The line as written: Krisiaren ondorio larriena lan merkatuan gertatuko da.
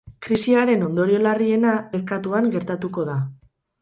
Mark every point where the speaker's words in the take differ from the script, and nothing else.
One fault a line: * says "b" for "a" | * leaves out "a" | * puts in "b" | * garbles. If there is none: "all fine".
* leaves out "lan"